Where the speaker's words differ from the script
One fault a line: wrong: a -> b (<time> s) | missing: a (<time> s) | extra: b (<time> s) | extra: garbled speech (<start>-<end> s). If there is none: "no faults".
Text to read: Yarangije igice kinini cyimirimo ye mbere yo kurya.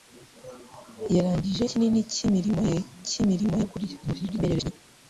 missing: igice (1.6 s)
wrong: mbere -> cyimirimo (3.1 s)
extra: garbled speech (4.0-4.7 s)